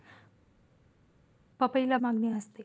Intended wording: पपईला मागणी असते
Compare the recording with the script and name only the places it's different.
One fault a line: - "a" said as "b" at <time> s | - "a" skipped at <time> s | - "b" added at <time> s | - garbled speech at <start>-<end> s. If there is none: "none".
none